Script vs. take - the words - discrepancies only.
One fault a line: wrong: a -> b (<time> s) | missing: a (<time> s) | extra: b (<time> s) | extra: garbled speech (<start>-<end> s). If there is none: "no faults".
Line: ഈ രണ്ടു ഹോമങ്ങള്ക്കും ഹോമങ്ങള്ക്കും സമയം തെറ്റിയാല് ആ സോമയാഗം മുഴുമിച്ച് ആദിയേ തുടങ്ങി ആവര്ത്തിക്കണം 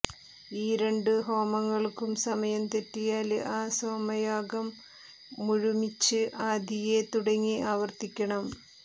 missing: ഹോമങ്ങള്ക്കും (2.1 s)